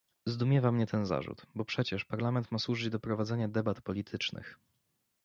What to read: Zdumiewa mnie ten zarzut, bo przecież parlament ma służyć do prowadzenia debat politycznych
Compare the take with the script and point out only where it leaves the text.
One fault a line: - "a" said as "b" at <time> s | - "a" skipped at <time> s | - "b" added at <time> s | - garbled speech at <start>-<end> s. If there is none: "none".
none